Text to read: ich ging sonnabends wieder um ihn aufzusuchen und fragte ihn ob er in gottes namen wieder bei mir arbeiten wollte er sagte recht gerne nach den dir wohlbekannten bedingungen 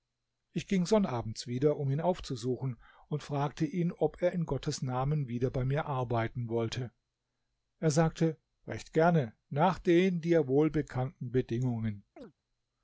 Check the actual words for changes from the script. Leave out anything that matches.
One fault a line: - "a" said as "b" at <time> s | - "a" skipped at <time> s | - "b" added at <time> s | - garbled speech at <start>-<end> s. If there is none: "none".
none